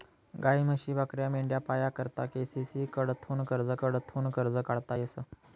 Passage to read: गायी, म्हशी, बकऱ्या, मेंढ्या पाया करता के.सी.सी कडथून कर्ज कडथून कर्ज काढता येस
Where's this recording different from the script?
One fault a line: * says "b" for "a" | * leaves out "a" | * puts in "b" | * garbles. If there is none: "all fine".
all fine